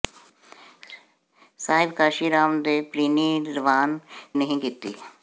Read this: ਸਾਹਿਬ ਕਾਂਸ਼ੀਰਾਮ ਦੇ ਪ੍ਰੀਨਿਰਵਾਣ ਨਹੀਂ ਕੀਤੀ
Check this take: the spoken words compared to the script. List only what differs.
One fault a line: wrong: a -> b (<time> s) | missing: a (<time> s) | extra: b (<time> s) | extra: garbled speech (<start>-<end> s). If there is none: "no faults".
no faults